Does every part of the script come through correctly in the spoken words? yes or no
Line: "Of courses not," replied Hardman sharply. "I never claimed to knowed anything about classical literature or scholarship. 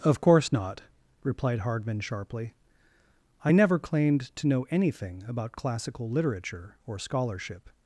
no